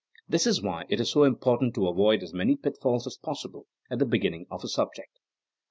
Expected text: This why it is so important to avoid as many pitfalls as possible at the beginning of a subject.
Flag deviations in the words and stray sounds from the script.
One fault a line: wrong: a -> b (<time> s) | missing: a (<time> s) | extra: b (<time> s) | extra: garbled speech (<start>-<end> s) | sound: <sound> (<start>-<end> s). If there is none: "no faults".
extra: is (0.5 s)